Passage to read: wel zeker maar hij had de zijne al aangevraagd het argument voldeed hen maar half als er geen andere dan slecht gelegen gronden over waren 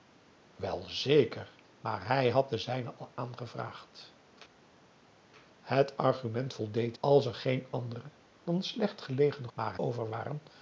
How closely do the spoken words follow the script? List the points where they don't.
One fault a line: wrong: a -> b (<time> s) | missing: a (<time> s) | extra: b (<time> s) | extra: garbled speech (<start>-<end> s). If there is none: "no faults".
missing: hen maar half (7.0 s)
wrong: gronden -> maar (9.5 s)